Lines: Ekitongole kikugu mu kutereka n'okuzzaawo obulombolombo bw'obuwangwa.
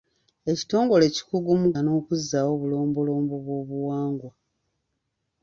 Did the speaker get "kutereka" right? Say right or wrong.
wrong